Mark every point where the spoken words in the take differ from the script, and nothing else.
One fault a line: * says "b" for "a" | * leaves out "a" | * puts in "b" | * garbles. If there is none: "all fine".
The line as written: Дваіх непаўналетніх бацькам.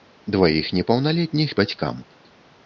all fine